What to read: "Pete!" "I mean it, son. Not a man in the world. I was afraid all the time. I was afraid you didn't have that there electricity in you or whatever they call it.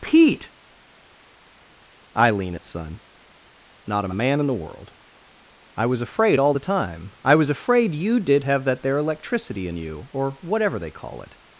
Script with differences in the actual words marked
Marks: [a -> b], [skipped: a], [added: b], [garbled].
"Pete!" "I [mean -> lean] it, son. Not a man in the world. I was afraid all the time. I was afraid you [didn't -> did] have that there electricity in you or whatever they call it.